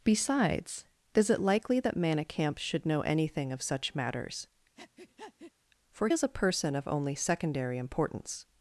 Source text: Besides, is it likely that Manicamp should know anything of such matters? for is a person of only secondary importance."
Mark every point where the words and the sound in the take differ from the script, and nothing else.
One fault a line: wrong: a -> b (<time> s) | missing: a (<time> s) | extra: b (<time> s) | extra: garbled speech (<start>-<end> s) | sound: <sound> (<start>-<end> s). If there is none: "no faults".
sound: breath (4.8-5.5 s)